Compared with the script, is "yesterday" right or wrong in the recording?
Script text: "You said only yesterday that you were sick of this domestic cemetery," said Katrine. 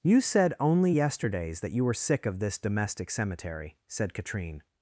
wrong